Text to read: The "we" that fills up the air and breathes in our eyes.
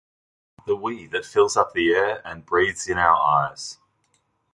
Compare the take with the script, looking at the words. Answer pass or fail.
pass